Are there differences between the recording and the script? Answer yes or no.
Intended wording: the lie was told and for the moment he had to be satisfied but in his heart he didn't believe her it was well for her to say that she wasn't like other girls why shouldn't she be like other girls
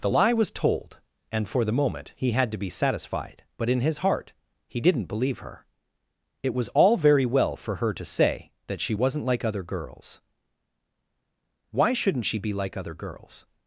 yes